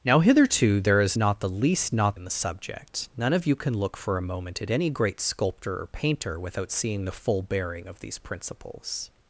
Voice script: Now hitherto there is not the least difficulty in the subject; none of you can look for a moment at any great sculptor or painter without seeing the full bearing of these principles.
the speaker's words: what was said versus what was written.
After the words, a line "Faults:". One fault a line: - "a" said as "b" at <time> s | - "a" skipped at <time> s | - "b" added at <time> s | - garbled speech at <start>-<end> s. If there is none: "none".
Now hitherto there is not the least not in the subject; none of you can look for a moment at any great sculptor or painter without seeing the full bearing of these principles.
Faults:
- "difficulty" said as "not" at 1.9 s